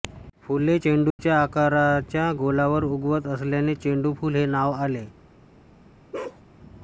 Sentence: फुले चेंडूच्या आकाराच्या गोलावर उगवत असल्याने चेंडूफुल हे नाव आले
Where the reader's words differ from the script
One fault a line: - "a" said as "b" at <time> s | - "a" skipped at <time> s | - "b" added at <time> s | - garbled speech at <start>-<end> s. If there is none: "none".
none